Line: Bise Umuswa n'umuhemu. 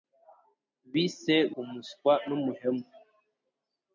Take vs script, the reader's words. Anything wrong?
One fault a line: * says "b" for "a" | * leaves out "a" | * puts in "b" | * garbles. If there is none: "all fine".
all fine